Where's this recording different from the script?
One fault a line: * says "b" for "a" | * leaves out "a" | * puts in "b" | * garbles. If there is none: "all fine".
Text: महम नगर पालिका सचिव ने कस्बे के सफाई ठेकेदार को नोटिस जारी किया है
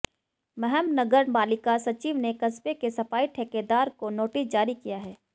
all fine